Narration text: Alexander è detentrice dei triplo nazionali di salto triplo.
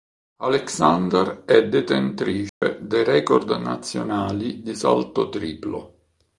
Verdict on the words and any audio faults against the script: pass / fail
fail